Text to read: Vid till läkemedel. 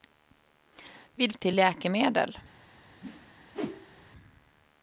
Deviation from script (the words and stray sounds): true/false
true